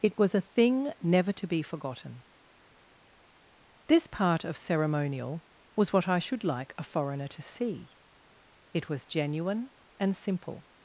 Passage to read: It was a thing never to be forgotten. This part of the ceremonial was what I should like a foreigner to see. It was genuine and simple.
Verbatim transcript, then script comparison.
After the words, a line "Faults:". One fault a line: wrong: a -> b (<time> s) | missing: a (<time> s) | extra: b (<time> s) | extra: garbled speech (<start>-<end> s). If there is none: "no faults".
It was a thing never to be forgotten. This part of ceremonial was what I should like a foreigner to see. It was genuine and simple.
Faults:
missing: the (4.6 s)